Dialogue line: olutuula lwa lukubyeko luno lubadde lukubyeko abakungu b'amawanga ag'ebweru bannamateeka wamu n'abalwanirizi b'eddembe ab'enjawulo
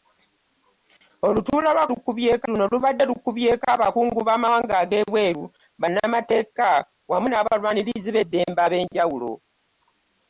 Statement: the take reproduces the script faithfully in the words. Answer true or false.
true